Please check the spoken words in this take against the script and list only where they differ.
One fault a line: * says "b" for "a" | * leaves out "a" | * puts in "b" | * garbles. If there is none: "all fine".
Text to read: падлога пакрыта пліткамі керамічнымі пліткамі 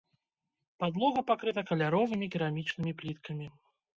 * says "каляровымі" for "пліткамі"